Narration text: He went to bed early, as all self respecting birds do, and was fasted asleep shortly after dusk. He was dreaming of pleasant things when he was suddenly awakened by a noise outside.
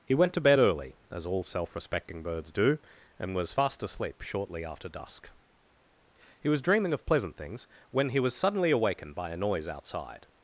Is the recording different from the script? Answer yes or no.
yes